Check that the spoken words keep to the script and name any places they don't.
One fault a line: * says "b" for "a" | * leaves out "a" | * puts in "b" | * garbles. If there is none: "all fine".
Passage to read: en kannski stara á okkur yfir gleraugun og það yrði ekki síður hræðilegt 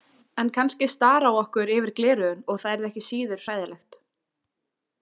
all fine